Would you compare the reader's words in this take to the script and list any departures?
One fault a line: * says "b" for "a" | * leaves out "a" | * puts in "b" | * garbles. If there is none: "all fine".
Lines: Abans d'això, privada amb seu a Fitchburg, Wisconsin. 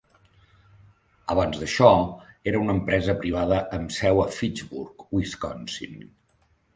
* puts in "era una empresa"